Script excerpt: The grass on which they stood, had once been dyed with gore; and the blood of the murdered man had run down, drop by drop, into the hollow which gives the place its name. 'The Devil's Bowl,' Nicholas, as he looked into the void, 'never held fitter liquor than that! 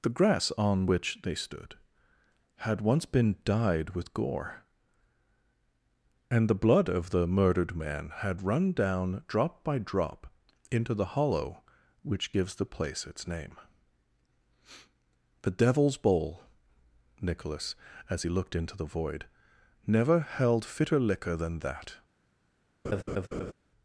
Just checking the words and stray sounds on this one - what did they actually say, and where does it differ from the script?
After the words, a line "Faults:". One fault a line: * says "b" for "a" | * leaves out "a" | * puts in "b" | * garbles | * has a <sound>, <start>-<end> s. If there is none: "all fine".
The grass on which they stood, had once been dyed with gore; and the blood of the murdered man had run down, drop by drop, into the hollow which gives the place its name. 'The Devil's Bowl,' Nicholas, as he looked into the void, 'never held fitter liquor than that!
Faults:
* has a laugh, 22.8-23.5 s